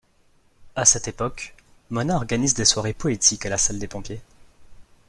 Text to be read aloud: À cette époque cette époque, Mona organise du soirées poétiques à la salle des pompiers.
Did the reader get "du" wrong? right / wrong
wrong